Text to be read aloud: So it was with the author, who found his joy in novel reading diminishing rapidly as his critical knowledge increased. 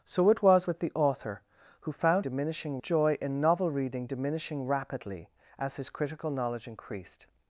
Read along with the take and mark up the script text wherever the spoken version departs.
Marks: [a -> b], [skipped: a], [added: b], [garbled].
So it was with the author, who found [his -> diminishing] joy in novel reading diminishing rapidly as his critical knowledge increased.